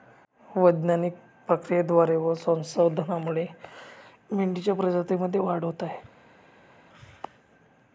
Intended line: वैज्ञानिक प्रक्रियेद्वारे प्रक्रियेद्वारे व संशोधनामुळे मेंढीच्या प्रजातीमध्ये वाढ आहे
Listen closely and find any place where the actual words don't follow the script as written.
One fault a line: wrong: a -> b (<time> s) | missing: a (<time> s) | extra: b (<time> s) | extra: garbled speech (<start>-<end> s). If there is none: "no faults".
missing: प्रक्रियेद्वारे (2.1 s)
extra: होत (5.6 s)